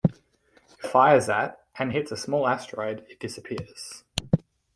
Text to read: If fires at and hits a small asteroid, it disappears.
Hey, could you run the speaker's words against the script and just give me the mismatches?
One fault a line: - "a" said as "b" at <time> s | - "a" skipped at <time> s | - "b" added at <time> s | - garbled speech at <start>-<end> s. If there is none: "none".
none